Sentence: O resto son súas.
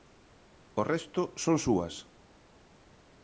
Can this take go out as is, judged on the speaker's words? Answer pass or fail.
pass